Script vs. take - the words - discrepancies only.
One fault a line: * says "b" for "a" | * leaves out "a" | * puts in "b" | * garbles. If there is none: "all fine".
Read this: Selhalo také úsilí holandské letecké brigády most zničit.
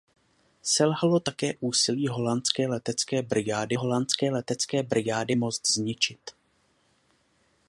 * puts in "holandské letecké brigády"